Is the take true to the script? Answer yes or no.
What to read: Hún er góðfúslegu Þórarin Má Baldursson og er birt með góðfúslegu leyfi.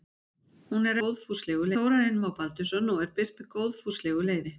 yes